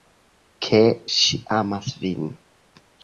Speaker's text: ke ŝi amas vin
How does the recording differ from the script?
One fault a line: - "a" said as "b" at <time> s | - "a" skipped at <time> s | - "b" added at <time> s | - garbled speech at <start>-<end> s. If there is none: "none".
none